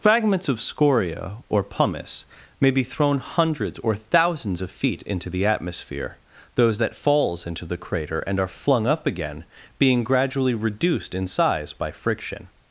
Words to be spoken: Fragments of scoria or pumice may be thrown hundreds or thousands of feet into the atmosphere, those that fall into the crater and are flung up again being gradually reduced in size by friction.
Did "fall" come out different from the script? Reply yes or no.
yes